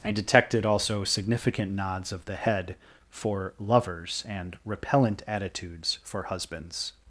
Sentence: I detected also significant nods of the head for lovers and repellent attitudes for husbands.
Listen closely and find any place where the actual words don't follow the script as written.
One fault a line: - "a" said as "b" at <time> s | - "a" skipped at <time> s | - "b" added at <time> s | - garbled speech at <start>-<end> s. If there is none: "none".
none